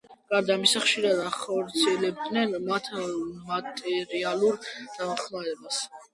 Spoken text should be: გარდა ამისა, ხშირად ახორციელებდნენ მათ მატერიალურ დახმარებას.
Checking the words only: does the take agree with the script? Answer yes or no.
yes